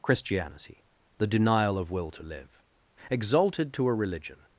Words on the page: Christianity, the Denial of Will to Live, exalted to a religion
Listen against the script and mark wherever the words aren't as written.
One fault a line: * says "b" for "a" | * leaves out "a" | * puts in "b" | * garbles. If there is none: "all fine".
all fine